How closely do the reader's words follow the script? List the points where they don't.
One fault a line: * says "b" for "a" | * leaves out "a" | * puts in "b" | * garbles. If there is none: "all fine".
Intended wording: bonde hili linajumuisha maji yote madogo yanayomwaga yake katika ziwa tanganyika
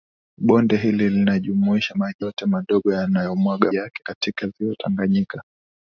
all fine